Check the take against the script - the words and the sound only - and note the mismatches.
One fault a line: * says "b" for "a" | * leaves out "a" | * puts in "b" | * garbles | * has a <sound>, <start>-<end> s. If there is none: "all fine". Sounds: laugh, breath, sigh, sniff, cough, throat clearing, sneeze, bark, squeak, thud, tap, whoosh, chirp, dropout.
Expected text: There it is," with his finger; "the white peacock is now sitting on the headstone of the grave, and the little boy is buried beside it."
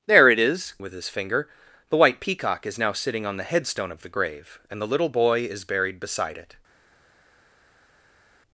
all fine